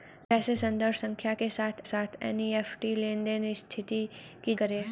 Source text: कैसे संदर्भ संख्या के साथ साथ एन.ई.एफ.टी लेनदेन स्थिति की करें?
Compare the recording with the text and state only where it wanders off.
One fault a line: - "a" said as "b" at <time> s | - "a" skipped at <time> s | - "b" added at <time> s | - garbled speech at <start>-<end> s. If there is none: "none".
none